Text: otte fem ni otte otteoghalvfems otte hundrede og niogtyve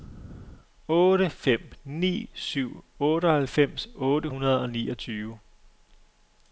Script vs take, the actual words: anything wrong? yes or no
yes